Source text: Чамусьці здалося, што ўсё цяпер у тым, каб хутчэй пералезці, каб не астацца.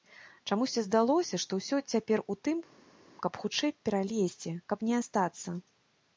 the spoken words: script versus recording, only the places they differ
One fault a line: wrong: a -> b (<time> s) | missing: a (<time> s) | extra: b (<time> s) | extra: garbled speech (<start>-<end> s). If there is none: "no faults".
no faults